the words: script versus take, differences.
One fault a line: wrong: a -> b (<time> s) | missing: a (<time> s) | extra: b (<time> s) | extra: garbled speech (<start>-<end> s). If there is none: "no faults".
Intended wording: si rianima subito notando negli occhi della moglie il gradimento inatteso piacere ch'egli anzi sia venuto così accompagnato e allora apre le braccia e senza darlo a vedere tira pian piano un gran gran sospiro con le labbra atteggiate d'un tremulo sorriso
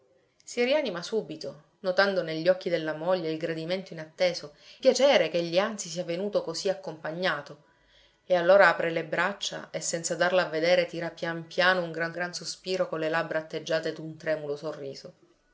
no faults